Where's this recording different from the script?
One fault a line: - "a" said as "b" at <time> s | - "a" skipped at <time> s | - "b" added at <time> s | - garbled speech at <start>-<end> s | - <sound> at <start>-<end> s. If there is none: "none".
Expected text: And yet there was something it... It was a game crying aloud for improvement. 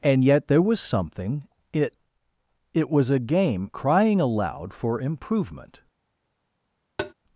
- tap at 7.0-7.1 s